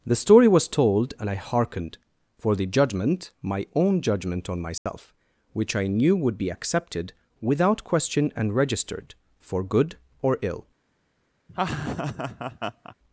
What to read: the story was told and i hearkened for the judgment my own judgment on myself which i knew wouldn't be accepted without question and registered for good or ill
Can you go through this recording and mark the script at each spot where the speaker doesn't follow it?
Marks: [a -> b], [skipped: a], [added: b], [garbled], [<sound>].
the story was told and i hearkened for the judgment my own judgment on myself [dropout] which i knew [wouldn't -> would] be accepted without question and registered for good or ill [laugh]